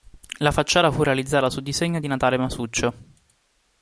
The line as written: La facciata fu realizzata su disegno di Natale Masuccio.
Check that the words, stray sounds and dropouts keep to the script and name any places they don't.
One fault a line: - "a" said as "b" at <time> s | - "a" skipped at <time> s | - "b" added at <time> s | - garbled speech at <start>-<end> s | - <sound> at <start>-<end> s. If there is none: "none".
none